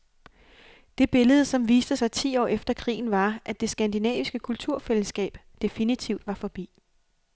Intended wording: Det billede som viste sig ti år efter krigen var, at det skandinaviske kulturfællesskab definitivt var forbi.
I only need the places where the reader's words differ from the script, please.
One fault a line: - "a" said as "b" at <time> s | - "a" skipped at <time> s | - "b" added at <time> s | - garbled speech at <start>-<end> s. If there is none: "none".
none